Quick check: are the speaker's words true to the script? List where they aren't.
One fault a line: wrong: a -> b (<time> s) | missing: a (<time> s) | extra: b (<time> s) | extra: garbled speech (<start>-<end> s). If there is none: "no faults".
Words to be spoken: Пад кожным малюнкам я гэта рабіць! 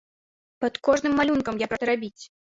no faults